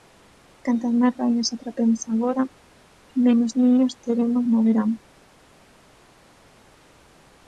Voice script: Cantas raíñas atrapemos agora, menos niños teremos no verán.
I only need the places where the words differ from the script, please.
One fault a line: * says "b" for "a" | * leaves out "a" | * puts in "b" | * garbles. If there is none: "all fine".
* puts in "máis"